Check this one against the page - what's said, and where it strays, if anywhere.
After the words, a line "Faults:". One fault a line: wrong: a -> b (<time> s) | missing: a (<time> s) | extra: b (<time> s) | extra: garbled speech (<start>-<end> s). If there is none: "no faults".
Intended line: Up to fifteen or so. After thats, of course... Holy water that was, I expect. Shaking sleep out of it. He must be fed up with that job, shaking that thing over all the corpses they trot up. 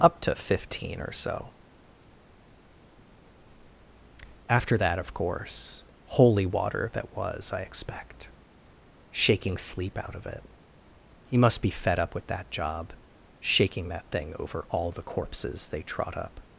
Up to fifteen or so. After that, of course... Holy water that was, I expect. Shaking sleep out of it. He must be fed up with that job, shaking that thing over all the corpses they trot up.
Faults:
wrong: thats -> that (4.8 s)